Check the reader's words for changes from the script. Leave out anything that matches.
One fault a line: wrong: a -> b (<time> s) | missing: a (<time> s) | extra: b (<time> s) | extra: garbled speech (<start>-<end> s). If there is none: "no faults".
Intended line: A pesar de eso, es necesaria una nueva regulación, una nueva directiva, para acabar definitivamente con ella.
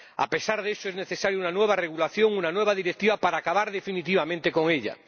no faults